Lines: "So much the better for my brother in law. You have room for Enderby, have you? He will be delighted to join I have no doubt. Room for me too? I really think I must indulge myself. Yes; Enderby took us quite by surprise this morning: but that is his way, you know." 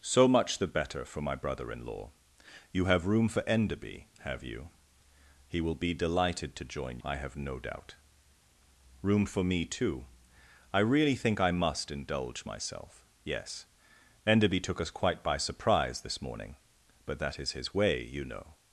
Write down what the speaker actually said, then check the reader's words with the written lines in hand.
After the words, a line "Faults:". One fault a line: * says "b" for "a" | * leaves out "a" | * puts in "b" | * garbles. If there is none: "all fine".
"So much the better for my brother in law. You have room for Enderby, have you? He will be delighted to join I have no doubt. Room for me too? I really think I must indulge myself. Yes; Enderby took us quite by surprise this morning: but that is his way, you know."
Faults:
all fine